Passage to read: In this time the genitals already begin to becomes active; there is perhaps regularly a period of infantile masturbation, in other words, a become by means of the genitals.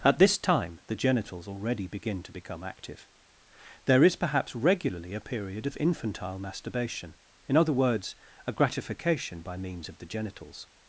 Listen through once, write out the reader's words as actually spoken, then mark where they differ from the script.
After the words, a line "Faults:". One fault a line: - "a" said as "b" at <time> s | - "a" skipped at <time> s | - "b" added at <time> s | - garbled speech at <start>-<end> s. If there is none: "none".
At this time the genitals already begin to become active; there is perhaps regularly a period of infantile masturbation, in other words, a gratification by means of the genitals.
Faults:
- "In" said as "At" at 0.0 s
- "becomes" said as "become" at 2.3 s
- "become" said as "gratification" at 8.5 s